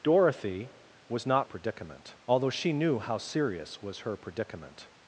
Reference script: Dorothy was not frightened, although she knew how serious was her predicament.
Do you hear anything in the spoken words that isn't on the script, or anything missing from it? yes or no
yes